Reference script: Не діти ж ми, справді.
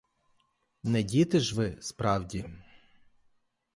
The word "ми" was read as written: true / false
false